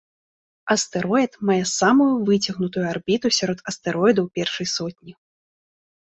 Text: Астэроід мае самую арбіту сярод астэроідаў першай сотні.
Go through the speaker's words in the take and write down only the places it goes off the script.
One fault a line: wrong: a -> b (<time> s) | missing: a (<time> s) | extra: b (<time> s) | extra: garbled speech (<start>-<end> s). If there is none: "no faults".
extra: выцягнутую (2.3 s)